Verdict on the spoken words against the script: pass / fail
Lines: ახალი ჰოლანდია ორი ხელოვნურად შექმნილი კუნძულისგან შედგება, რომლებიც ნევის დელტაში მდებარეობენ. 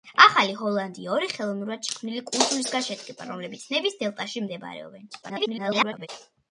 fail